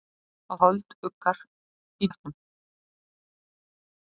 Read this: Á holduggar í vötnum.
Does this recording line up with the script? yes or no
yes